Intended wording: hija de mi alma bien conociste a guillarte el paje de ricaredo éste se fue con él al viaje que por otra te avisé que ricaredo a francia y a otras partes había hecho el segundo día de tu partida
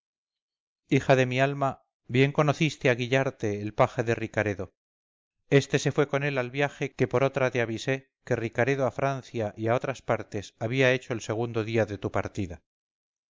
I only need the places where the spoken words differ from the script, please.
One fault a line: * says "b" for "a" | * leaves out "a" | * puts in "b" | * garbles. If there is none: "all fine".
all fine